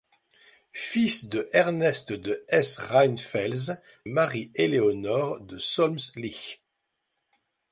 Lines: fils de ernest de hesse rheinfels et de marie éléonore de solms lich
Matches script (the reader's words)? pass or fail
fail